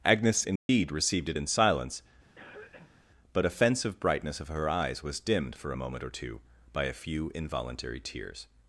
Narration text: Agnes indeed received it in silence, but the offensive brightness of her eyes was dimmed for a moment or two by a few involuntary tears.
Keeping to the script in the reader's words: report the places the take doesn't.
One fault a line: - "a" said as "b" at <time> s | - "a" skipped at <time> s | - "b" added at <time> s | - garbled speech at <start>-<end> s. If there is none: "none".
- "the" skipped at 3.4 s